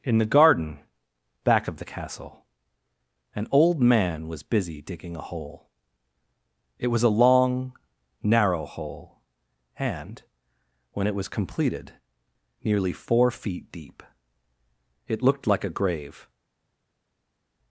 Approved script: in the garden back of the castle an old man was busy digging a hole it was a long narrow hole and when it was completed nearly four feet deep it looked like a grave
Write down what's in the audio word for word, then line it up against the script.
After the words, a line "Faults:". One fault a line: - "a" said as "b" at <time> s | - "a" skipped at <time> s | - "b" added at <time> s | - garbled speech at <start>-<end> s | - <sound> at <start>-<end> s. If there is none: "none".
in the garden back of the castle an old man was busy digging a hole it was a long narrow hole and when it was completed nearly four feet deep it looked like a grave
Faults:
none